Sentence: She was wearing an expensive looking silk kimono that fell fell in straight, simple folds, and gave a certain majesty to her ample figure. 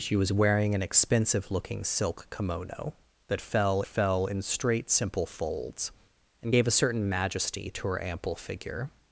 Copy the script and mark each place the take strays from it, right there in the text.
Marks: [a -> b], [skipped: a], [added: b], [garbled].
She was wearing an expensive looking silk kimono that fell fell in straight, simple folds, and gave a certain majesty to her ample figure.